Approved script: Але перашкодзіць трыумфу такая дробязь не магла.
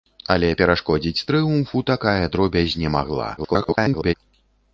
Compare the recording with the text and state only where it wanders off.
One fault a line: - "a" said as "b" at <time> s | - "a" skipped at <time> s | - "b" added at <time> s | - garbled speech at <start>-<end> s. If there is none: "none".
- garbled speech at 3.4-4.1 s